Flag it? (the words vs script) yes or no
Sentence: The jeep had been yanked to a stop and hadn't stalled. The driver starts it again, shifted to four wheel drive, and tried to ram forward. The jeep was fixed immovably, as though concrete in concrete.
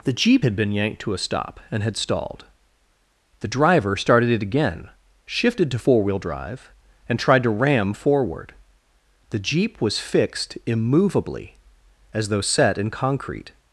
yes